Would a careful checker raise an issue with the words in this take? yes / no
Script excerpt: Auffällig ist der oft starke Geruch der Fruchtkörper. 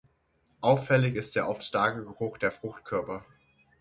no